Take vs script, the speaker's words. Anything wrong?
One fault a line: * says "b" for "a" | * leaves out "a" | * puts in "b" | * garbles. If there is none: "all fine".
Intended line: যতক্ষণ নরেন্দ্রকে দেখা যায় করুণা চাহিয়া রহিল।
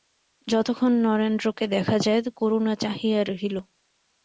all fine